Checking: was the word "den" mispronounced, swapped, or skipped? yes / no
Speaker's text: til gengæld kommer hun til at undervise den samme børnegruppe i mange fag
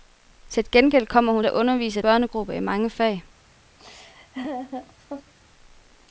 yes